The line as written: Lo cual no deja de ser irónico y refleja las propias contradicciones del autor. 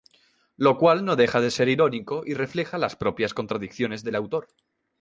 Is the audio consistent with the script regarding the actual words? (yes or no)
yes